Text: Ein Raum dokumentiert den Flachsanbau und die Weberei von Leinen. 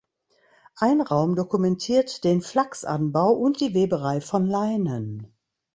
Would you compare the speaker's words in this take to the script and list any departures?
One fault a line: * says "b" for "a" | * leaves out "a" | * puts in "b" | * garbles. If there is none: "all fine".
all fine